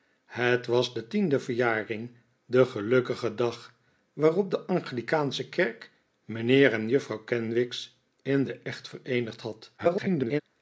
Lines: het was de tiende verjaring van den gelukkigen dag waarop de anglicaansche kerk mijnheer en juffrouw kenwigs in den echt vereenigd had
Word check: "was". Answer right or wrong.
right